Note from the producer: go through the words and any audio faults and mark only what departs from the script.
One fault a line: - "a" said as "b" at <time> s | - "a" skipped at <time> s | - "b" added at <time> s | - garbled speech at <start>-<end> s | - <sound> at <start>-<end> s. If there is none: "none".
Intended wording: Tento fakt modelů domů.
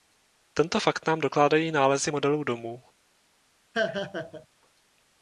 - "nám dokládají nálezy" added at 1.1 s
- laugh at 3.7-4.5 s